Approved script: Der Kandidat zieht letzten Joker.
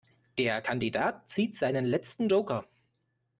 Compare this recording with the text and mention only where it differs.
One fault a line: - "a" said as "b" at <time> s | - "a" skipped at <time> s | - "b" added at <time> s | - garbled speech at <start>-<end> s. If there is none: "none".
- "seinen" added at 1.6 s